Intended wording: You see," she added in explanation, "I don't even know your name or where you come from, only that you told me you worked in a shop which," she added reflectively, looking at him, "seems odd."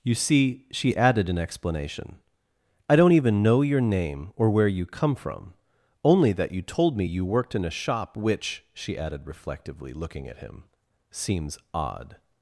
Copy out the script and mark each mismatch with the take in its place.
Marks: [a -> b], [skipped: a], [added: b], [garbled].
You see," she added in explanation, "I don't even know your name or where you come from, only that you told me you worked in a shop which," she added reflectively, looking at him, "seems odd."